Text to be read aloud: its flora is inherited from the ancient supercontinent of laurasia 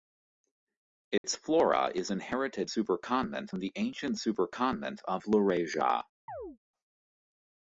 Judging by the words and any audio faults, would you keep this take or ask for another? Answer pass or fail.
fail